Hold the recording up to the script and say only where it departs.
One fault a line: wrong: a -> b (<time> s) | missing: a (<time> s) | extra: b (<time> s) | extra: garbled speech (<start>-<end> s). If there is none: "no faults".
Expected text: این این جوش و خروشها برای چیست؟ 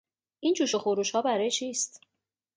missing: این (0.5 s)